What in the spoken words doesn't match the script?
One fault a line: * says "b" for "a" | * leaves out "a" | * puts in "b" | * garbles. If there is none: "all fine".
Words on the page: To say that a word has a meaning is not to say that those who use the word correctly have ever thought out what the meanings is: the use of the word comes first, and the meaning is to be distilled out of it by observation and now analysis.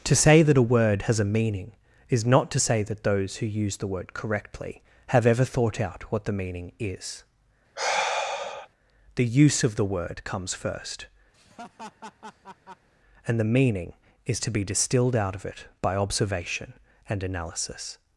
* says "meaning" for "meanings"
* leaves out "now"